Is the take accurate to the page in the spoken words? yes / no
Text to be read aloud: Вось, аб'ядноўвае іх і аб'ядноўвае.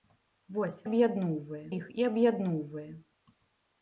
yes